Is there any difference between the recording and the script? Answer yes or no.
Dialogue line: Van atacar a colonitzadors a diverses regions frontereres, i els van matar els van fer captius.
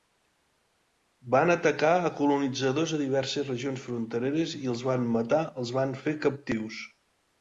no